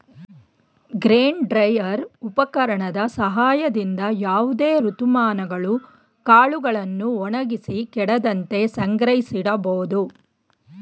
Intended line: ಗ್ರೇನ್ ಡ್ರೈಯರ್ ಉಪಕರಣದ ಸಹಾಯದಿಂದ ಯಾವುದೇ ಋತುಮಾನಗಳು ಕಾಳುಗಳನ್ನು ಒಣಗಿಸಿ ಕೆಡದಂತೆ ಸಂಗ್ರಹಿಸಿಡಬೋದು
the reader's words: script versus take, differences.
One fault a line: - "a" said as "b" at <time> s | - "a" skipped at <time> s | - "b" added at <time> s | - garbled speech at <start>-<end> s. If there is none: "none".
none